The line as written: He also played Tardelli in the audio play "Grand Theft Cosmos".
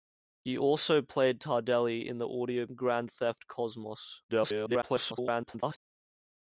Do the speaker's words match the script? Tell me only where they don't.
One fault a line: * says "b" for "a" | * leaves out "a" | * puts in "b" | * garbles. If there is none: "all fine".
* leaves out "play"
* garbles